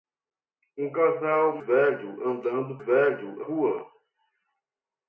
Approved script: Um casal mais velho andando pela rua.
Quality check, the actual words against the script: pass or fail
fail